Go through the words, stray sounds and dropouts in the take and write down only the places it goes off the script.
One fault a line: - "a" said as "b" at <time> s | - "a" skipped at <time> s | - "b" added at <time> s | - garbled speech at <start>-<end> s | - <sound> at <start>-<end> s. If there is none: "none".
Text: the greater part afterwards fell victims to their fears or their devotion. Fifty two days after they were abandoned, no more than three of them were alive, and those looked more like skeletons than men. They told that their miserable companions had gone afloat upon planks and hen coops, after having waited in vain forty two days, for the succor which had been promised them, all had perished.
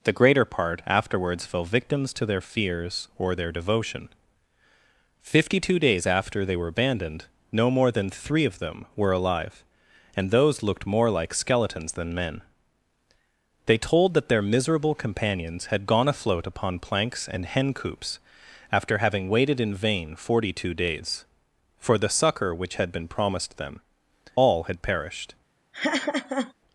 - laugh at 25.7-26.5 s